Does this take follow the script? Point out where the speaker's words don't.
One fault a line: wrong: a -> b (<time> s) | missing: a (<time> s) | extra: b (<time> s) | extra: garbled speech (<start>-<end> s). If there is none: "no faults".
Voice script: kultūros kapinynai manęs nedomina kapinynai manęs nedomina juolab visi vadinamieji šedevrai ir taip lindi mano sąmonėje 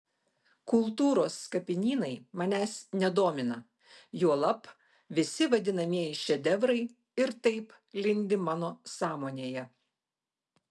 missing: kapinynai manęs nedomina (3.6 s)